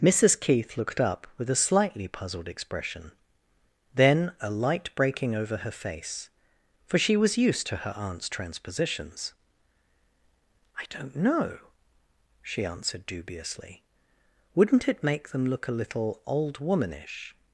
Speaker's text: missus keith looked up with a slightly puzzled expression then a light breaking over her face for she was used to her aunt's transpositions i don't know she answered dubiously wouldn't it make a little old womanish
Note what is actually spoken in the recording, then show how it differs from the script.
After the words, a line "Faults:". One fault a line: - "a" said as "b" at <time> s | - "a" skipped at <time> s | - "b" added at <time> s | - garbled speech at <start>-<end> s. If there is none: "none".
missus keith looked up with a slightly puzzled expression then a light breaking over her face for she was used to her aunt's transpositions i don't know she answered dubiously wouldn't it make them look a little old womanish
Faults:
- "them look" added at 15.3 s